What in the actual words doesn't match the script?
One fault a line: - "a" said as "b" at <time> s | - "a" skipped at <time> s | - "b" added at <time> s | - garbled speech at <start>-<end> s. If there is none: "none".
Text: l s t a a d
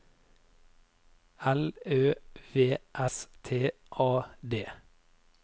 - "ø v" added at 1.9 s
- "a" skipped at 4.2 s